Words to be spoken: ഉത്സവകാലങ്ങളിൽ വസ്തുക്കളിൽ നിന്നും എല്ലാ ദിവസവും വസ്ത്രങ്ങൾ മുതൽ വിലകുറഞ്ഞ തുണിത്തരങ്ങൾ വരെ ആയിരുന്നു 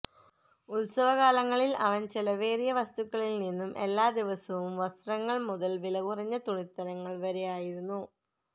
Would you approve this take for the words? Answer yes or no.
no